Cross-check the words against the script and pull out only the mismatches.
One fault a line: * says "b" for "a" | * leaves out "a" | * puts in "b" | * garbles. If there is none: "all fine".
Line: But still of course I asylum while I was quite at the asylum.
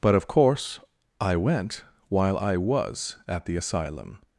* leaves out "still"
* says "went" for "asylum"
* leaves out "quite"